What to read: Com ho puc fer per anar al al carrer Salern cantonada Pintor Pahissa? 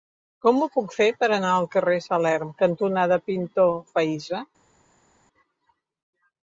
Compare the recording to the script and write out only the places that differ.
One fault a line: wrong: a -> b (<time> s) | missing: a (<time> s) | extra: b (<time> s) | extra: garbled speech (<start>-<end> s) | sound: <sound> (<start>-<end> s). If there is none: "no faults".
missing: al (1.7 s)